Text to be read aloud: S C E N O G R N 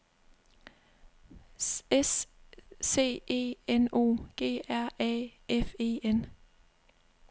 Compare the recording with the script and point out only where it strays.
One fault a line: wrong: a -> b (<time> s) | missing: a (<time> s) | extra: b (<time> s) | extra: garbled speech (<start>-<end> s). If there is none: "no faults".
extra: A F E (5.0 s)